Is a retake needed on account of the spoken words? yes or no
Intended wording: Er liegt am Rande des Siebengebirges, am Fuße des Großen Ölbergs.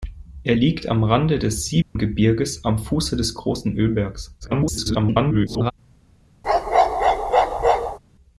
yes